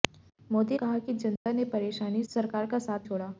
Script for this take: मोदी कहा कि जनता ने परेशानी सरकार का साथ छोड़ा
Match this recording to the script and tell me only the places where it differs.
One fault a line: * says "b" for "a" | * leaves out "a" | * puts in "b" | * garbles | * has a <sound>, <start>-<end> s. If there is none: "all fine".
* has a dropout, 1.4-1.5 s